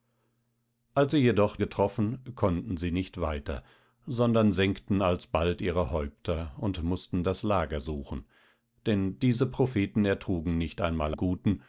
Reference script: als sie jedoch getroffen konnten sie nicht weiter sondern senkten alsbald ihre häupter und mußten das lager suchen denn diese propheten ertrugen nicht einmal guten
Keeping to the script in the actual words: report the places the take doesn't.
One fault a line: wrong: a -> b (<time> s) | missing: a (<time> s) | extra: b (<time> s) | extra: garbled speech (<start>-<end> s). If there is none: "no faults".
no faults